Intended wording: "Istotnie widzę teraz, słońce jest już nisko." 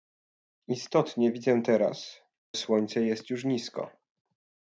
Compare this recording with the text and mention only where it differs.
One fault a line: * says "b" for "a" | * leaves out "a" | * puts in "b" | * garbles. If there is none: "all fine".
all fine